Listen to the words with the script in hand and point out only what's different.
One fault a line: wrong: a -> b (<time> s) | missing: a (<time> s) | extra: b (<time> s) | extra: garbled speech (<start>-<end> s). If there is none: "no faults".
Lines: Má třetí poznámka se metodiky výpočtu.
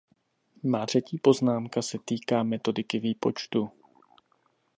extra: týká (2.0 s)